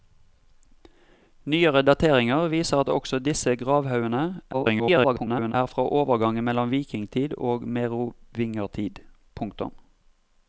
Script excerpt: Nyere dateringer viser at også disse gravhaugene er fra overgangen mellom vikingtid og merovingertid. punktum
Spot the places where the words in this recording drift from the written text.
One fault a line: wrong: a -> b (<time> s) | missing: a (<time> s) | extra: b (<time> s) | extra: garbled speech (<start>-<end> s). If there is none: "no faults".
extra: garbled speech (4.5-5.5 s)